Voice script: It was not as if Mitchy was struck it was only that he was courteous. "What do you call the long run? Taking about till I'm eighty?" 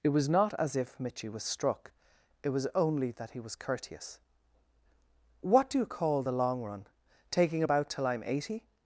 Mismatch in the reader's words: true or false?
false